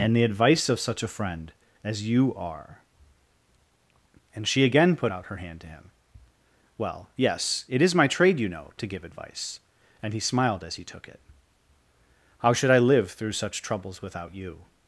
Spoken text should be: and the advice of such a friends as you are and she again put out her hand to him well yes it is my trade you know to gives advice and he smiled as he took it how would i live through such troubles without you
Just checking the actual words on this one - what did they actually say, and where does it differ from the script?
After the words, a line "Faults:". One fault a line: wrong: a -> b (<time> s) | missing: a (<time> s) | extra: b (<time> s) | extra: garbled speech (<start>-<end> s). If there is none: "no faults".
and the advice of such a friend as you are and she again put out her hand to him well yes it is my trade you know to give advice and he smiled as he took it how should i live through such troubles without you
Faults:
wrong: friends -> friend (1.1 s)
wrong: gives -> give (8.9 s)
wrong: would -> should (12.5 s)